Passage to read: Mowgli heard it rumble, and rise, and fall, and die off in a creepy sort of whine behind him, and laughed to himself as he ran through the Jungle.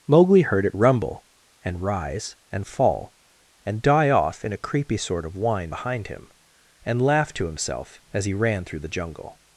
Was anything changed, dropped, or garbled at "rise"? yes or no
no